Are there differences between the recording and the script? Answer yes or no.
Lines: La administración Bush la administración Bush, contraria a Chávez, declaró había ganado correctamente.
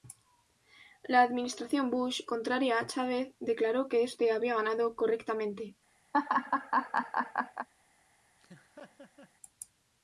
yes